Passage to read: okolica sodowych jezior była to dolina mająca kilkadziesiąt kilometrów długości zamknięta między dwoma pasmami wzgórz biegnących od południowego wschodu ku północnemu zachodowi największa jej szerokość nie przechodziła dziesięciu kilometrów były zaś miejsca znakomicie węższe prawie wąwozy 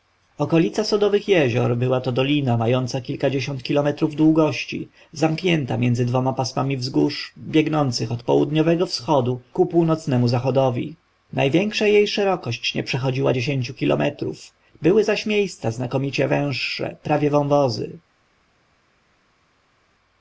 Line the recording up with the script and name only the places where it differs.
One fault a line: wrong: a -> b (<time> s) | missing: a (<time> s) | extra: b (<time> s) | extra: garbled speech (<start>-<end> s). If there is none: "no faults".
no faults